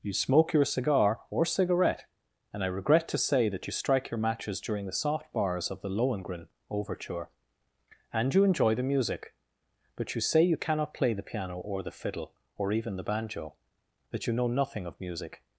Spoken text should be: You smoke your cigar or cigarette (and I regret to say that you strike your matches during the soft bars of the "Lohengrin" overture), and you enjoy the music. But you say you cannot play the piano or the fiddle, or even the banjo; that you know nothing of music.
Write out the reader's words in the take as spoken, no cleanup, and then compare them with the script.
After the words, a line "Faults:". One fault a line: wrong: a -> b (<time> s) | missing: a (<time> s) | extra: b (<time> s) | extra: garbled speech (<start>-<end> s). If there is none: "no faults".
You smoke your cigar or cigarette (and I regret to say that you strike your matches during the soft bars of the "Lohengrin" overture), and you enjoy the music. But you say you cannot play the piano or the fiddle, or even the banjo; that you know nothing of music.
Faults:
no faults